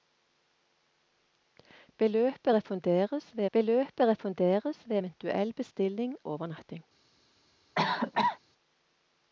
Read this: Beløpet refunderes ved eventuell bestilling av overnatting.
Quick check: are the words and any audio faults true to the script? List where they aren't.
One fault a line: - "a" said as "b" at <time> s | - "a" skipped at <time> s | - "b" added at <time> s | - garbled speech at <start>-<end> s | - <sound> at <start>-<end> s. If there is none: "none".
- "beløpet refunderes ved" added at 3.5 s
- "av" skipped at 6.2 s
- cough at 7.8-8.4 s